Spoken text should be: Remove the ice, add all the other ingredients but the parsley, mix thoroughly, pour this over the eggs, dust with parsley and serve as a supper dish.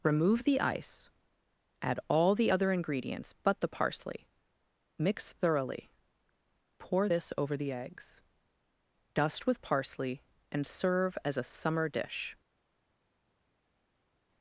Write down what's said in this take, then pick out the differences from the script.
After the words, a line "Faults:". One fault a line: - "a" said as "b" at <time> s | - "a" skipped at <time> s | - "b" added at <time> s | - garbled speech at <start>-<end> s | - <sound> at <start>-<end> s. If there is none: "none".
Remove the ice, add all the other ingredients but the parsley, mix thoroughly, pour this over the eggs, dust with parsley and serve as a summer dish.
Faults:
- "supper" said as "summer" at 11.4 s